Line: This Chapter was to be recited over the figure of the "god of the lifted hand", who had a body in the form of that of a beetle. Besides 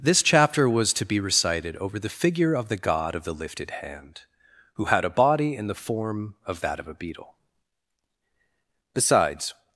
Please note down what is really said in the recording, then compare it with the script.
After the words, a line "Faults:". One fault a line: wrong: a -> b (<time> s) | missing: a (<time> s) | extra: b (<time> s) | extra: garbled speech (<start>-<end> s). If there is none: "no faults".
This Chapter was to be recited over the figure of the "god of the lifted hand", who had a body in the form of that of a beetle. Besides
Faults:
no faults